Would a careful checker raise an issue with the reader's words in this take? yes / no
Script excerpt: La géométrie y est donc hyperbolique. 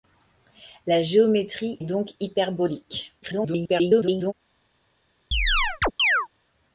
yes